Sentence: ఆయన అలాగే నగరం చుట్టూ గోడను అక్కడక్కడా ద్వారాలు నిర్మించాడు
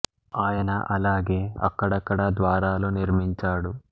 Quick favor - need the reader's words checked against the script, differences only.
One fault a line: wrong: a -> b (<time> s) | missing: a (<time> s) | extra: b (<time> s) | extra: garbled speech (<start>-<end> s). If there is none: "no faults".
missing: నగరం చుట్టూ గోడను (1.4 s)